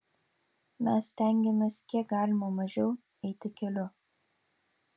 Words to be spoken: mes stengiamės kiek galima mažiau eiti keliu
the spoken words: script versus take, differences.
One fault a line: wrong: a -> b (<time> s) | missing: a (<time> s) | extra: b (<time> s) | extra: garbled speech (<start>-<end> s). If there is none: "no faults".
no faults